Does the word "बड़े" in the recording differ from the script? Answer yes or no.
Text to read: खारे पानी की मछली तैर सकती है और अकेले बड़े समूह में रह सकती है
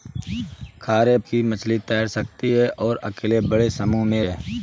no